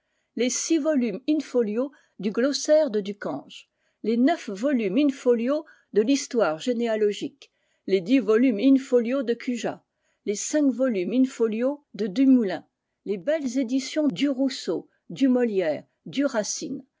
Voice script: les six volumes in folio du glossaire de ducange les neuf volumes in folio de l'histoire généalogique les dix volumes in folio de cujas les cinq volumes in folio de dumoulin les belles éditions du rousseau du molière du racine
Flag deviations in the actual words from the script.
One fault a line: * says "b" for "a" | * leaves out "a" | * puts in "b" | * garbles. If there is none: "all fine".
all fine